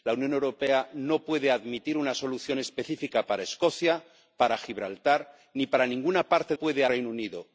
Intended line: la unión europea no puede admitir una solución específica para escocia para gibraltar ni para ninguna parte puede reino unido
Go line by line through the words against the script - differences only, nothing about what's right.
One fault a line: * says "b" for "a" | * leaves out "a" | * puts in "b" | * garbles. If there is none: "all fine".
all fine